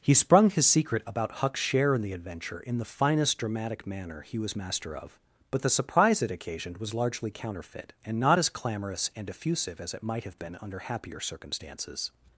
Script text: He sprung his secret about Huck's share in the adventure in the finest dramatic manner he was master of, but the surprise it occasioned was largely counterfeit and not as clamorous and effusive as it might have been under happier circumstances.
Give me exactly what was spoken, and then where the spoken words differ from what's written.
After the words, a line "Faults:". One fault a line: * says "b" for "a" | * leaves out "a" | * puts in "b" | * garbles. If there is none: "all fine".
He sprung his secret about Huck's share in the adventure in the finest dramatic manner he was master of, but the surprise it occasioned was largely counterfeit and not as clamorous and effusive as it might have been under happier circumstances.
Faults:
all fine